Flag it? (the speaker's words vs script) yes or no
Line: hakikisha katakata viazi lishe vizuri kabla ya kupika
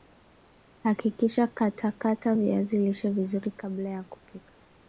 no